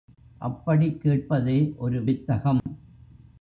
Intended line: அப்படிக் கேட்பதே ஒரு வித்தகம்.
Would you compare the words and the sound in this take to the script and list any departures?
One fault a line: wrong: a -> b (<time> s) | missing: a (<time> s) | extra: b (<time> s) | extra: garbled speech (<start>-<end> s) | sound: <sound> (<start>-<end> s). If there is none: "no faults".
sound: dropout (2.6-2.7 s)